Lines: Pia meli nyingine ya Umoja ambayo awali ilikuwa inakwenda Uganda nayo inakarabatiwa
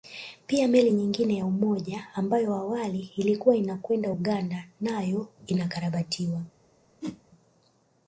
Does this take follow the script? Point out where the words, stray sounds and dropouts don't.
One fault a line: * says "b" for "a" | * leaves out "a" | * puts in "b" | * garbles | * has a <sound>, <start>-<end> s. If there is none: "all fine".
* has a whoosh, 7.0-7.2 s